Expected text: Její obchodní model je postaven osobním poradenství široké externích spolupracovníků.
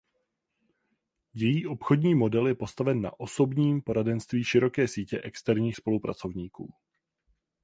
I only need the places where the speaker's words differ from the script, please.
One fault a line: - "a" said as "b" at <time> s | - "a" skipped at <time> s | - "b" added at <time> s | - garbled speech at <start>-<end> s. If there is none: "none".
- "na" added at 3.0 s
- "sítě" added at 4.9 s